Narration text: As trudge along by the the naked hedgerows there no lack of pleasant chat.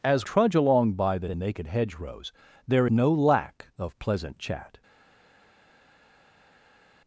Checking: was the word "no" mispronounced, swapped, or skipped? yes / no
no